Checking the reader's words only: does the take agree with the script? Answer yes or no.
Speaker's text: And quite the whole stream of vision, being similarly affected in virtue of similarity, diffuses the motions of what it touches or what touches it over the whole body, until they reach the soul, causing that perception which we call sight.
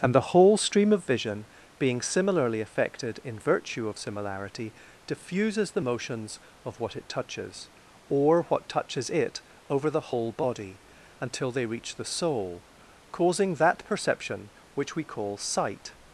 no